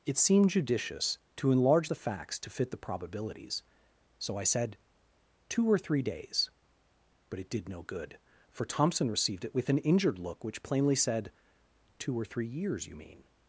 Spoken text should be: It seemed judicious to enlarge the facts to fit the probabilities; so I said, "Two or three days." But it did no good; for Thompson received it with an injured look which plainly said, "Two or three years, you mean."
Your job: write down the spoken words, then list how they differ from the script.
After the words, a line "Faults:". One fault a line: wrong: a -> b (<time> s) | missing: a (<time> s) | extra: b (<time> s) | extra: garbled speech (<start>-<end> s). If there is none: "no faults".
It seemed judicious to enlarge the facts to fit the probabilities; so I said, "Two or three days." But it did no good; for Thompson received it with an injured look which plainly said, "Two or three years, you mean."
Faults:
no faults